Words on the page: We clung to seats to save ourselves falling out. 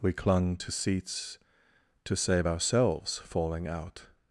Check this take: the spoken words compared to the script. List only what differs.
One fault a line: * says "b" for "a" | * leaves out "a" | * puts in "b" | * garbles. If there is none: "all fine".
all fine